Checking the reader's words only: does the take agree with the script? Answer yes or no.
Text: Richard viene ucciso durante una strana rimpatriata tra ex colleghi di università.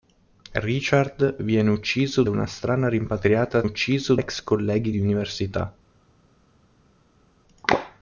no